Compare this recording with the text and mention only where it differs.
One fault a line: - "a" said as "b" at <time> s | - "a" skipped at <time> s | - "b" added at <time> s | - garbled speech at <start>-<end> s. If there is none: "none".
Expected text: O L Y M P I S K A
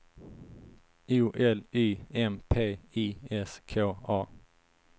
none